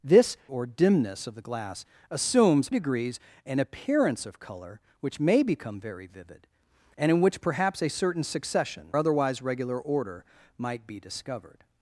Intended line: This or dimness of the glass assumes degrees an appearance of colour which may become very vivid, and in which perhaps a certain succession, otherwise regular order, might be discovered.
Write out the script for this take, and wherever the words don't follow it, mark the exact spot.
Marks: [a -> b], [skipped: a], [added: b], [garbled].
This or dimness of the glass assumes degrees an appearance of colour which may become very vivid, and in which perhaps a certain succession, otherwise regular order, might be discovered.